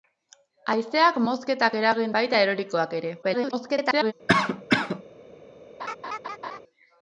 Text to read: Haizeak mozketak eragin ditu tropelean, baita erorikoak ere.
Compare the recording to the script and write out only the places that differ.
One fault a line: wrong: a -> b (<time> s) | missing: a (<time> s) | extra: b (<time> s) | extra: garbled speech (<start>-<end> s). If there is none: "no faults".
missing: ditu tropelean (2.2 s)
extra: garbled speech (3.2-4.1 s)